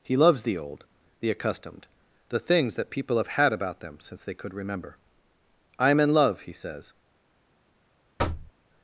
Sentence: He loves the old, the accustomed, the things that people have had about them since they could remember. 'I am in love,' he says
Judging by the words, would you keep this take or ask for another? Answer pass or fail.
pass